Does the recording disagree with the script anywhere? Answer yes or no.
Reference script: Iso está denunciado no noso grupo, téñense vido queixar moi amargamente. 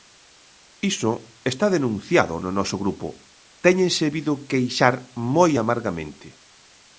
no